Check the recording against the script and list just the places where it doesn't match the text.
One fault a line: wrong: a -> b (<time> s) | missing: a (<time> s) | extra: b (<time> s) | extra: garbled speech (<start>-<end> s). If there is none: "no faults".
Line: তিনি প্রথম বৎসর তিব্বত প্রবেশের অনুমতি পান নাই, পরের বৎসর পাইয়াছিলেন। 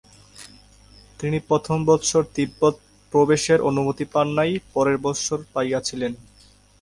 no faults